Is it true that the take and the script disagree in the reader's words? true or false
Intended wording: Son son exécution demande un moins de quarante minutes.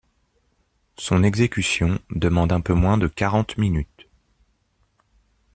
true